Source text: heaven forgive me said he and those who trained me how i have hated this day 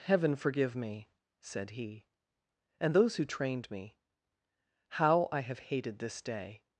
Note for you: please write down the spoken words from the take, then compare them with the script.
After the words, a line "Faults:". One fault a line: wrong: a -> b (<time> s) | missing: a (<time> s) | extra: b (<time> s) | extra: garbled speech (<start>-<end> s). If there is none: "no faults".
heaven forgive me said he and those who trained me how i have hated this day
Faults:
no faults